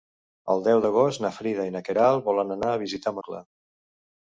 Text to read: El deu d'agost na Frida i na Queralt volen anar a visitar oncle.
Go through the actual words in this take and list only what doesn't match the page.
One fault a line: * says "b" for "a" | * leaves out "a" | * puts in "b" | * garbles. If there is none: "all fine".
all fine